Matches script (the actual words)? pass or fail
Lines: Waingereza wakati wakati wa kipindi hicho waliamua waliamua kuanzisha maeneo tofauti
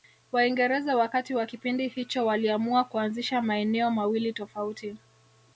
fail